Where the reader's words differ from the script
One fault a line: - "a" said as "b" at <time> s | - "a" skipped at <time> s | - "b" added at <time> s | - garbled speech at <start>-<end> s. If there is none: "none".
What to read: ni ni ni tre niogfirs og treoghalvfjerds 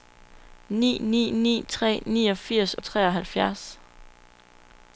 none